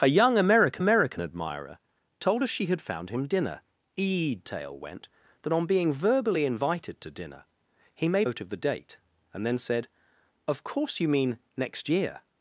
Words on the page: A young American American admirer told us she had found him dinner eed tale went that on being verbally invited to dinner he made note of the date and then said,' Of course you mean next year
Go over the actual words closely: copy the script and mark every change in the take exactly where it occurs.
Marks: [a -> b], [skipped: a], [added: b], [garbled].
A young American American admirer told us she had found him dinner eed tale went that on being verbally invited to dinner he made note of the date and then said,' Of course you mean next year